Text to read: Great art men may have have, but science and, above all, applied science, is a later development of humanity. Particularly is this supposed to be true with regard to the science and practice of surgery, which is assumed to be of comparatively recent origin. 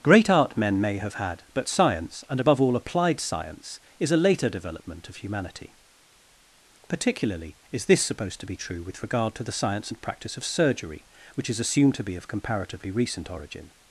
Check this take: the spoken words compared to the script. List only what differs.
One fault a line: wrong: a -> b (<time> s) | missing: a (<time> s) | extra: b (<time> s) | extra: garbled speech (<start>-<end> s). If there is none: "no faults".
wrong: have -> had (1.1 s)